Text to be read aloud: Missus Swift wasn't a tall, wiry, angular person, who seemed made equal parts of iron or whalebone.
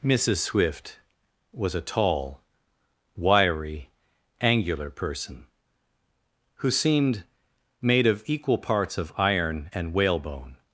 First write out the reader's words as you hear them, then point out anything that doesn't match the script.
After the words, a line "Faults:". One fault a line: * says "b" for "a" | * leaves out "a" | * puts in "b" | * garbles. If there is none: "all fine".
Missus Swift was a tall, wiry, angular person, who seemed made of equal parts of iron and whalebone.
Faults:
* says "was" for "wasn't"
* puts in "of"
* says "and" for "or"